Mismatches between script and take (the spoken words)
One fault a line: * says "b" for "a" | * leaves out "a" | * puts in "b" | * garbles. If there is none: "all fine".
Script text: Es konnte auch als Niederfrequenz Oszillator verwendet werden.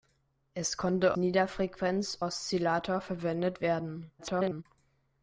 * leaves out "auch als"
* garbles